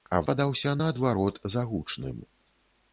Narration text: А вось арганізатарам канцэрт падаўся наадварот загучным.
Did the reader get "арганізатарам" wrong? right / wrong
wrong